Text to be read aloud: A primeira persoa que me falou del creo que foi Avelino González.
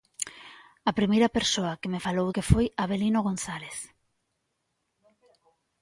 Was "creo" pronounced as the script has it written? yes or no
no